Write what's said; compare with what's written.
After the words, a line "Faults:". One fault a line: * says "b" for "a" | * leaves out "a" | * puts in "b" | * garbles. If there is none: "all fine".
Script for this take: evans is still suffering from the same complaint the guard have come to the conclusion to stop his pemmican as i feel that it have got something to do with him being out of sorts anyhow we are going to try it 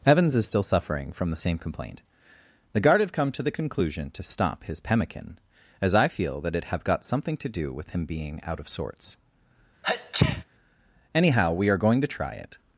evans is still suffering from the same complaint the guard have come to the conclusion to stop his pemmican as i feel that it have got something to do with him being out of sorts anyhow we are going to try it
Faults:
all fine